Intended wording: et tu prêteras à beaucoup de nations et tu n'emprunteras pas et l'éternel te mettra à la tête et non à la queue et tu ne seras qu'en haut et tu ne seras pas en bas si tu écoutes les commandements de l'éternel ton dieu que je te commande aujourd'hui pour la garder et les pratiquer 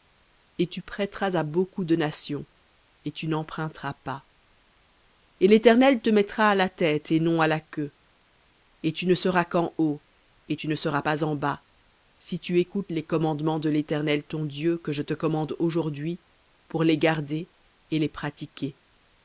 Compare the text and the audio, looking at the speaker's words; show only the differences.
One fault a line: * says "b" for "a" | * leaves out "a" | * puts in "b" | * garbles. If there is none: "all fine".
* says "les" for "la"